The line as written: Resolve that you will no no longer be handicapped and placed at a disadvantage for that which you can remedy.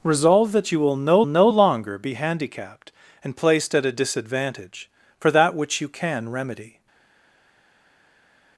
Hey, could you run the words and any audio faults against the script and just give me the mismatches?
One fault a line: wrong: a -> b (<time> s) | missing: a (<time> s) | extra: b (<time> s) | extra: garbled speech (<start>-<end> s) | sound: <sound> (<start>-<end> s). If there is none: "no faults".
no faults